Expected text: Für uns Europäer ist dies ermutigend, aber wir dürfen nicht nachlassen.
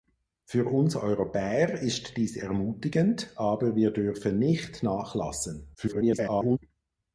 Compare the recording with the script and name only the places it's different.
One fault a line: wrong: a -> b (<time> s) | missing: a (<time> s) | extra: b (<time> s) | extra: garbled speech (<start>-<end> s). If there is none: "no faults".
extra: garbled speech (5.7-6.6 s)